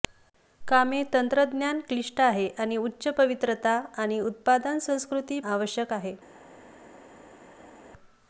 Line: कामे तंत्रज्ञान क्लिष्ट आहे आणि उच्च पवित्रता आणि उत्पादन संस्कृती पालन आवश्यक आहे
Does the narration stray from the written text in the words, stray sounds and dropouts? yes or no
yes